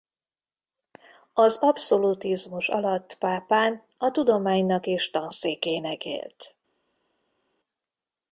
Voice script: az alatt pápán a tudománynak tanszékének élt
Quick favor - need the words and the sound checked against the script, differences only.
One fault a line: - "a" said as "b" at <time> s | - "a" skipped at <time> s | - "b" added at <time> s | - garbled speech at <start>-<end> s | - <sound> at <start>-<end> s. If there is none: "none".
- "abszolutizmus" added at 1.6 s
- "és" added at 4.8 s